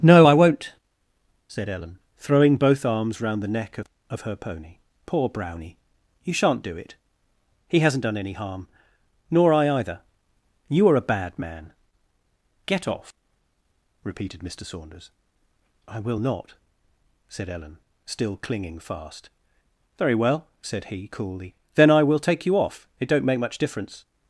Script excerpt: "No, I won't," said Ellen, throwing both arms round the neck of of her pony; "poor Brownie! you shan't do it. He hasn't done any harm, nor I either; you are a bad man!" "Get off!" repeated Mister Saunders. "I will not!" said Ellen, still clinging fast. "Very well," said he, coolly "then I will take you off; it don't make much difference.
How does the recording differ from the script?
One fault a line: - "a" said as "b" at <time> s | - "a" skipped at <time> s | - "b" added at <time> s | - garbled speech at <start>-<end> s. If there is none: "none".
none